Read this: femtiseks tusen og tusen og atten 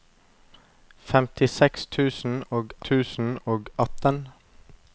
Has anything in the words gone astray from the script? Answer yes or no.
no